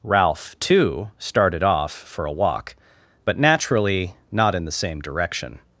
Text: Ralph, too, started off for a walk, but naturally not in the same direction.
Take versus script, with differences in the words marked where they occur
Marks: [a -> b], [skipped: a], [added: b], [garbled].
Ralph, too, started off for a walk, but naturally not in the same direction.